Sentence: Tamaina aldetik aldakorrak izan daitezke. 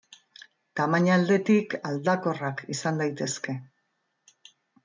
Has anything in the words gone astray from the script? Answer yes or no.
no